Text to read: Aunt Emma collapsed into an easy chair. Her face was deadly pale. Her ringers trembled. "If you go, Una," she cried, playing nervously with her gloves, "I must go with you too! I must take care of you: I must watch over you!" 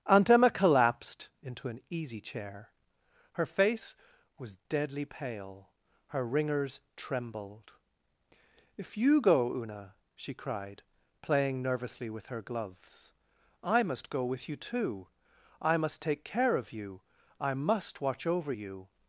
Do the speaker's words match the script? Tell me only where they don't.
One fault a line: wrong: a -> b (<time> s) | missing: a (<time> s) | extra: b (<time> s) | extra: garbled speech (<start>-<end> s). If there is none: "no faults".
no faults